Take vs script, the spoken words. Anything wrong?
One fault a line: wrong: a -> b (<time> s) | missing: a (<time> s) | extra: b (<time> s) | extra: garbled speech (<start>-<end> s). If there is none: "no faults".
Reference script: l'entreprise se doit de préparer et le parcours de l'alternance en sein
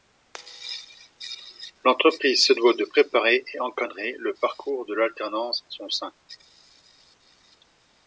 extra: encadrer (3.6 s)
extra: son (5.7 s)